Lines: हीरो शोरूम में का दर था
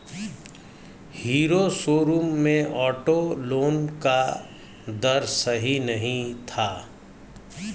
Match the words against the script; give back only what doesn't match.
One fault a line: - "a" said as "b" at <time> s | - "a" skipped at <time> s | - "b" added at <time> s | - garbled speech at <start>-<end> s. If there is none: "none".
- "ऑटो लोन" added at 2.6 s
- "सही नहीं" added at 5.2 s